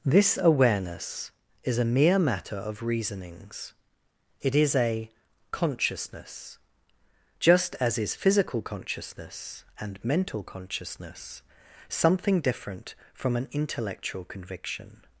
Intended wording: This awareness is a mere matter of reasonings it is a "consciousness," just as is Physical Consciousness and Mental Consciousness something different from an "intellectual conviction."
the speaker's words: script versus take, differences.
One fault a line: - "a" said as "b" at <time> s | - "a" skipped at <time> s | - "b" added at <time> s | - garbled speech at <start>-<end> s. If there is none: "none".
none